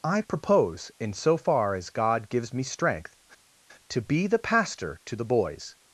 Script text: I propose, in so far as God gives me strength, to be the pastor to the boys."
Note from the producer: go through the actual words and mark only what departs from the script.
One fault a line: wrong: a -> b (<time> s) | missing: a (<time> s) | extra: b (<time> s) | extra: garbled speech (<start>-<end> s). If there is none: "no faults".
no faults